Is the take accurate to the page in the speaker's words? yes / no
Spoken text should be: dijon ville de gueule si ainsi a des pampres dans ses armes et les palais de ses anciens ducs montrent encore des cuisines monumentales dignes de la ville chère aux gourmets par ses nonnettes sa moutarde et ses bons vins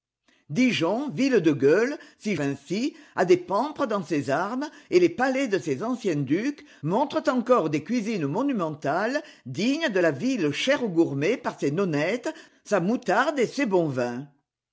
yes